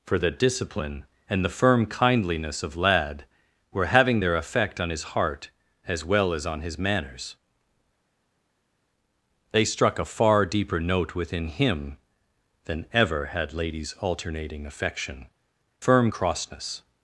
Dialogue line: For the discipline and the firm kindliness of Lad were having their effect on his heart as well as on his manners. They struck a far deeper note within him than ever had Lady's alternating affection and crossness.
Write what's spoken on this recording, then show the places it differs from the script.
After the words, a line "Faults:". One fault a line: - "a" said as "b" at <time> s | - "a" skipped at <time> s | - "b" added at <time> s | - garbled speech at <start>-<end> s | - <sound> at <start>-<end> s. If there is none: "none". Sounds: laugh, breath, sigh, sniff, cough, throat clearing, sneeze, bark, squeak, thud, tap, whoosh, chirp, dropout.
For the discipline and the firm kindliness of Lad were having their effect on his heart as well as on his manners. They struck a far deeper note within him than ever had Lady's alternating affection firm crossness.
Faults:
- "and" said as "firm" at 15.8 s